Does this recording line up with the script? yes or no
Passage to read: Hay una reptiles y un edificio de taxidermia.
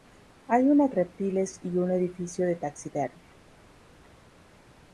yes